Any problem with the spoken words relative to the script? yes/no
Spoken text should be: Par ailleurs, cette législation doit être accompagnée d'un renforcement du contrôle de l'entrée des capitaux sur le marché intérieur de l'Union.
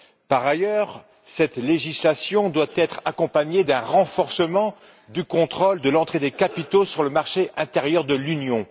no